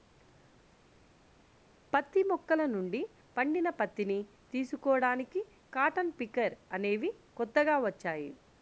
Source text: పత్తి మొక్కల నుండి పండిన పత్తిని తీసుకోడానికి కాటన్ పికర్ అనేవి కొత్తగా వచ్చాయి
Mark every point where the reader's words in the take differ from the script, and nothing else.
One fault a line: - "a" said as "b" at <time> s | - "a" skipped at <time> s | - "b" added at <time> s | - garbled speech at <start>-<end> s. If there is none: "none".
none